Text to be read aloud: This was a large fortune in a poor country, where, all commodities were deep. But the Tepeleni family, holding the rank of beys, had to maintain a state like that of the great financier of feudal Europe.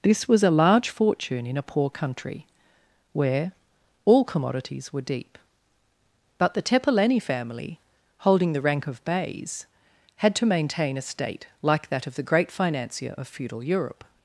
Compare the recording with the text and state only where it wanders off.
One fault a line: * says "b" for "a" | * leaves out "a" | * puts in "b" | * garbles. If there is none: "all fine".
all fine